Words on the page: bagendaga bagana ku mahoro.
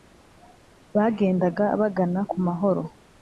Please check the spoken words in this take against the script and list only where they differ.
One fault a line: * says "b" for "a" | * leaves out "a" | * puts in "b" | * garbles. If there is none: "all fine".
all fine